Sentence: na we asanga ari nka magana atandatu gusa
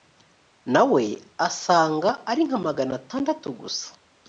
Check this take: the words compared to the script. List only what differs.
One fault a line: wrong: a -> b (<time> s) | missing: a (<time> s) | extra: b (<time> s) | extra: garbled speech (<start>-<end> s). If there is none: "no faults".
no faults